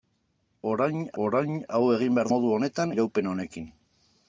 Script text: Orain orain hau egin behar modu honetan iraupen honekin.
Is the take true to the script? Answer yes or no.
yes